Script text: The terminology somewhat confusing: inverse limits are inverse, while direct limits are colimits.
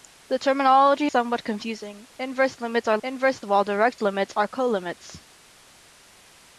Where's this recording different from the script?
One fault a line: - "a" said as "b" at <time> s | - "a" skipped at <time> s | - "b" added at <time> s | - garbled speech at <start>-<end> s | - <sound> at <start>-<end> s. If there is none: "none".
none